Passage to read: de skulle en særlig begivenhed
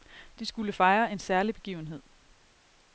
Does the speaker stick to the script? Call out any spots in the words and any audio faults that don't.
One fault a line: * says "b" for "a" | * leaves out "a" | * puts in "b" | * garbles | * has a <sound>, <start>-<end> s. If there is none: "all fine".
* puts in "fejre"